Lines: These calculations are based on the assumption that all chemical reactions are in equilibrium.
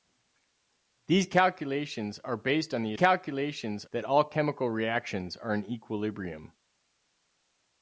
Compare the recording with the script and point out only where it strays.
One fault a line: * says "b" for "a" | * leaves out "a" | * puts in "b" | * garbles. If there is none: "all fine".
* says "calculations" for "assumption"